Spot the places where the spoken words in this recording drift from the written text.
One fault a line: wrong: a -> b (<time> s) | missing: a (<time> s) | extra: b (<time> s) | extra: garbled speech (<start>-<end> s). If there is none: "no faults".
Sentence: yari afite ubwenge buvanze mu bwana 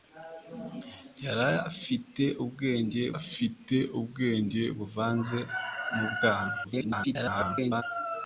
extra: afite ubwenge (3.2 s)
extra: garbled speech (6.6-7.8 s)